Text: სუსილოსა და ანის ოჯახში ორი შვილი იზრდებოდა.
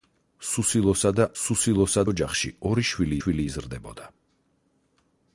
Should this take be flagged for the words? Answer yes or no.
yes